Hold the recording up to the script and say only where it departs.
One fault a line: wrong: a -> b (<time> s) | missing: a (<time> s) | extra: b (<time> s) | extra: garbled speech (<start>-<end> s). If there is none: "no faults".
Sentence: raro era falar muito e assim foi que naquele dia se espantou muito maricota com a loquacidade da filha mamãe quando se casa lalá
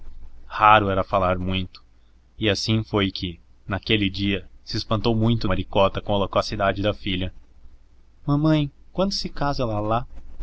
no faults